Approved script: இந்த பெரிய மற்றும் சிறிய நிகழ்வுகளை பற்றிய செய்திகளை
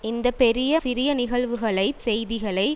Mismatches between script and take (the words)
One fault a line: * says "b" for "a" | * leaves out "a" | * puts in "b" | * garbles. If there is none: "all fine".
* leaves out "மற்றும்"
* leaves out "பற்றிய"